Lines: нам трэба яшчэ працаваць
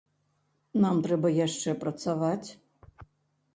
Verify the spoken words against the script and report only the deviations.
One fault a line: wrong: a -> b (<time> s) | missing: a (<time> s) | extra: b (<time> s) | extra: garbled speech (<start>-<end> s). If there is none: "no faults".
no faults